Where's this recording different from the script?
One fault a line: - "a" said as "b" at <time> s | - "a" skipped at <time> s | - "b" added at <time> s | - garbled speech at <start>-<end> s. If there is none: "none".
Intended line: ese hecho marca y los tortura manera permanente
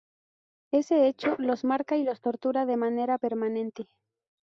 - "los" added at 1.4 s
- "de" added at 2.6 s